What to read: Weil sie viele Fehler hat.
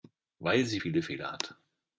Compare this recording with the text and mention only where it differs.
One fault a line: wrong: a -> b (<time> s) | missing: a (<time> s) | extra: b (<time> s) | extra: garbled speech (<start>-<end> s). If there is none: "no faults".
no faults